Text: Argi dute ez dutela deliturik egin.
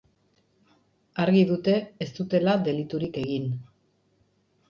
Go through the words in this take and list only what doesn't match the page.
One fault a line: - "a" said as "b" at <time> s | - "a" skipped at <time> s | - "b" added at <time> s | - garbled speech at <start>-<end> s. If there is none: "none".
none